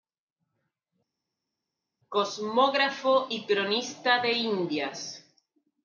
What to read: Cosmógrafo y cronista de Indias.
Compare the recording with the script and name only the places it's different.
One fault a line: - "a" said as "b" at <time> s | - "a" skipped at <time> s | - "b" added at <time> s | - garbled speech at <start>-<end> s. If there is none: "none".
none